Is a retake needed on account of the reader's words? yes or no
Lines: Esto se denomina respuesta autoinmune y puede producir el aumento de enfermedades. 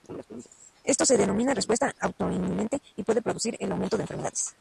no